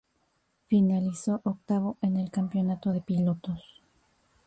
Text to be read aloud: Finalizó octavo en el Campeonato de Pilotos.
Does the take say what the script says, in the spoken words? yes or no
yes